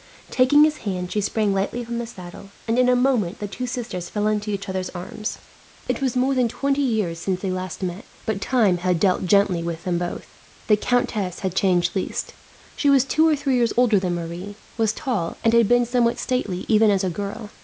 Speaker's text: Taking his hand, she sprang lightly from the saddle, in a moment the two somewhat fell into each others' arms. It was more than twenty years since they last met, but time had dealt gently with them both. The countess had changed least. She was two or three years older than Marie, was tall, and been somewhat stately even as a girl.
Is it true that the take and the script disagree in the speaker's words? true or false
true